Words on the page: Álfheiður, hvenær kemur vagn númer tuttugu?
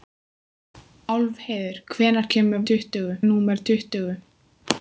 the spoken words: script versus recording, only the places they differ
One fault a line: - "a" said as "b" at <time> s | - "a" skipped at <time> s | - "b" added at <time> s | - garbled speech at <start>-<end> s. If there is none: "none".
- "vagn" said as "tuttugu" at 2.7 s